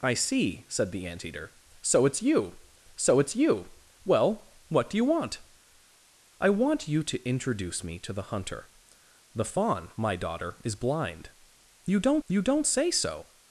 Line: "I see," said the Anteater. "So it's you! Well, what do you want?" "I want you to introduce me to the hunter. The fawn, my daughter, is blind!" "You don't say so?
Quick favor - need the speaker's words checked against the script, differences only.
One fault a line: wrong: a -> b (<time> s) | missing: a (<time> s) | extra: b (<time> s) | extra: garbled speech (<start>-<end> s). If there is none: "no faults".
extra: so it's you (2.9 s)
extra: you don't (12.3 s)